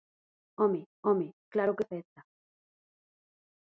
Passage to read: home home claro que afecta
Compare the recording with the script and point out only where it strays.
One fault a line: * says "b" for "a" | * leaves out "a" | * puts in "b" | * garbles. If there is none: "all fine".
all fine